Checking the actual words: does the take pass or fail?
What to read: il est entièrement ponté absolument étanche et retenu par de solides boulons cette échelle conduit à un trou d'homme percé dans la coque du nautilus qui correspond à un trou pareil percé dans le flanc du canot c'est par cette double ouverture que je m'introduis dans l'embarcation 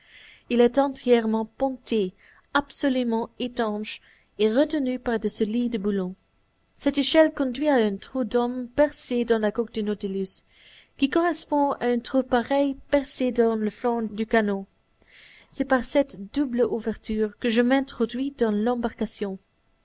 pass